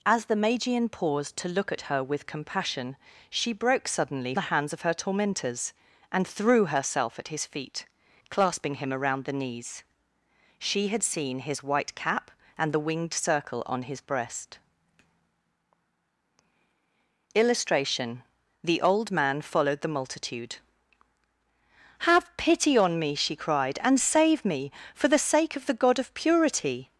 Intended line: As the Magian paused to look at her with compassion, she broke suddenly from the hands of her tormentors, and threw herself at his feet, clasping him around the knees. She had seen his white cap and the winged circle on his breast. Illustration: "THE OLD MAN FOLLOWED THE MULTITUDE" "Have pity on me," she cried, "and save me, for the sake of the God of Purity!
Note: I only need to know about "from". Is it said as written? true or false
false